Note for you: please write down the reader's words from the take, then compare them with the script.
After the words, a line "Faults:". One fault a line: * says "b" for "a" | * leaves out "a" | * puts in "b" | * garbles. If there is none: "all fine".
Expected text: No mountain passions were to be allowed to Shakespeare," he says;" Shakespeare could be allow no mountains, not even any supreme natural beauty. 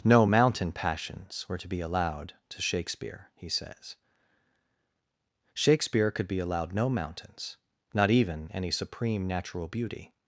No mountain passions were to be allowed to Shakespeare," he says;" Shakespeare could be allowed no mountains, not even any supreme natural beauty.
Faults:
* says "allowed" for "allow"